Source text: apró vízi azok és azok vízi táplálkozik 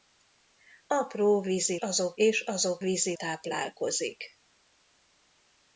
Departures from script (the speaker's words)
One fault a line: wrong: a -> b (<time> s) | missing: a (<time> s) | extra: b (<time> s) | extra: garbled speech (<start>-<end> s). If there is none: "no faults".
no faults